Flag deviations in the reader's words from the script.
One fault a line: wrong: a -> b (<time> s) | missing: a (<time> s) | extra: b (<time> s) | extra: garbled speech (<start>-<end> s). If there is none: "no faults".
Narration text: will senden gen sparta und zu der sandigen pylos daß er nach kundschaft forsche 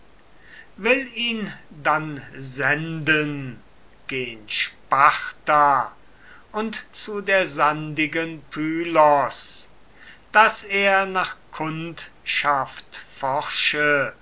extra: ihn dann (1.1 s)